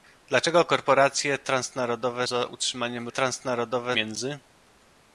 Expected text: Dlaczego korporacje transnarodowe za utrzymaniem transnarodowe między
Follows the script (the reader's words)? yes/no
yes